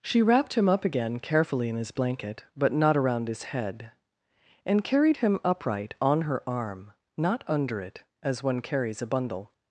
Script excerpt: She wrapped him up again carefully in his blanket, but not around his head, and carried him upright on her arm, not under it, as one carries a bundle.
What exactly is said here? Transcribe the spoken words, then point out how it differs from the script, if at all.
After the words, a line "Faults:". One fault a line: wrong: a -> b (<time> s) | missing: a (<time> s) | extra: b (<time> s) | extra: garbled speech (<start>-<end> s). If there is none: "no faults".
She wrapped him up again carefully in his blanket, but not around his head, and carried him upright on her arm, not under it, as one carries a bundle.
Faults:
no faults